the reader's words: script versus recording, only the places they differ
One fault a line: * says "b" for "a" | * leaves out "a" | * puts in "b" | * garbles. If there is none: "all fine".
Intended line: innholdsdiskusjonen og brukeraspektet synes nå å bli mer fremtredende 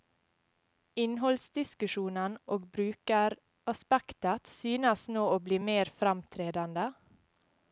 all fine